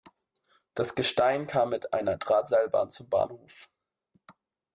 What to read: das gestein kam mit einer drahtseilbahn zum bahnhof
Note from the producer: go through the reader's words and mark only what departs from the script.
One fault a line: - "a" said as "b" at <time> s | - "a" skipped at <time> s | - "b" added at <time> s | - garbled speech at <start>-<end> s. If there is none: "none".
none